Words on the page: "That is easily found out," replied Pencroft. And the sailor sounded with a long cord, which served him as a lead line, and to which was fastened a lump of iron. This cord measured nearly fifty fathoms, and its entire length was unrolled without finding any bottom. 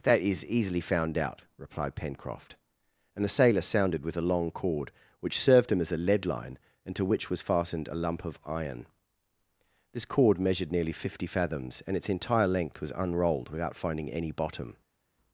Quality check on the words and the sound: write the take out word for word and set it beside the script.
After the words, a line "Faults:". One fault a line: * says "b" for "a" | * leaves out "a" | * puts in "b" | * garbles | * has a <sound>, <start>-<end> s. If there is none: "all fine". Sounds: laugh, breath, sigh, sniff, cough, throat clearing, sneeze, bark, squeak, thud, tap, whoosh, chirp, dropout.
"That is easily found out," replied Pencroft. And the sailor sounded with a long cord, which served him as a lead line, and to which was fastened a lump of iron. This cord measured nearly fifty fathoms, and its entire length was unrolled without finding any bottom.
Faults:
all fine